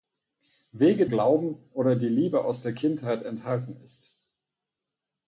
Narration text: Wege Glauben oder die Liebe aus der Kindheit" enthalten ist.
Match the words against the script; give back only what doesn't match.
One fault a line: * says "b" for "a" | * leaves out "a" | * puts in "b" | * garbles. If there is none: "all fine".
all fine